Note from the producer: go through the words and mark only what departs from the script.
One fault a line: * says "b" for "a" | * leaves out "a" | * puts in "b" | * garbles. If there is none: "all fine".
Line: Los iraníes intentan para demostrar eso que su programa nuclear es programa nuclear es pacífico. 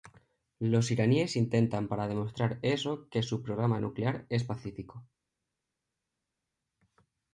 * leaves out "programa nuclear es"